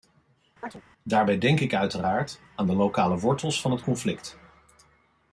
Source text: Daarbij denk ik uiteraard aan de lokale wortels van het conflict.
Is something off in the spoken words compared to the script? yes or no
no